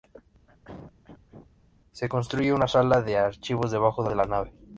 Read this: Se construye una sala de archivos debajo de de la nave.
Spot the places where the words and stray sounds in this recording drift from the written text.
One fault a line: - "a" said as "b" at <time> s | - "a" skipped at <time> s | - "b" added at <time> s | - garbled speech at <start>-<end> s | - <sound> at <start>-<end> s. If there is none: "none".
- throat clearing at 0.5-1.5 s